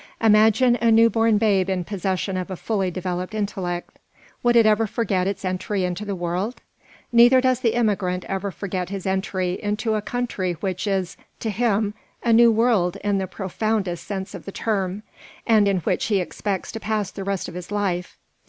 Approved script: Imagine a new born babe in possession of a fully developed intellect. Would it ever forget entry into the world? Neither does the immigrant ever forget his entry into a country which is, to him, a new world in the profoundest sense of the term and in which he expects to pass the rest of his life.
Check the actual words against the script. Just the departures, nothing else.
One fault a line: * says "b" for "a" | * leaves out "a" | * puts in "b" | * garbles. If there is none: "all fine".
* puts in "its"